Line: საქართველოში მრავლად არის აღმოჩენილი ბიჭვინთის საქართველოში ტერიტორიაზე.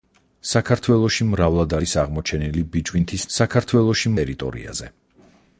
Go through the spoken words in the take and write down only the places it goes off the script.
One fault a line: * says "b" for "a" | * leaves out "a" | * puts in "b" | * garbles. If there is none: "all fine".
all fine